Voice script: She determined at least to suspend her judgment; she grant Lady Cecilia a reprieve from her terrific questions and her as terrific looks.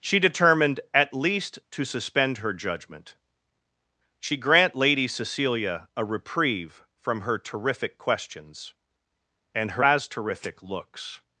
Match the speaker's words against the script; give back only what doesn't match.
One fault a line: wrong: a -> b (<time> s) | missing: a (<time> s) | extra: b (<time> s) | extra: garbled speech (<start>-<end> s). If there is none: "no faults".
no faults